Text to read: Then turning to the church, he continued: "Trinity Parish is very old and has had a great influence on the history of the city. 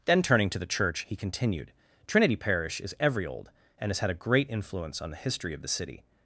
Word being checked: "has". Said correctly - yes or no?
yes